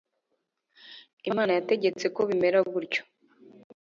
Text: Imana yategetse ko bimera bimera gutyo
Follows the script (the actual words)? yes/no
no